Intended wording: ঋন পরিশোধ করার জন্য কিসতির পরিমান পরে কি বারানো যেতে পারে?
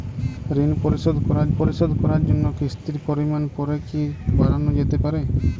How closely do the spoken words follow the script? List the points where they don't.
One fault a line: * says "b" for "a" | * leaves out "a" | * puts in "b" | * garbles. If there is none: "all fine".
* puts in "পরিশোধ করার"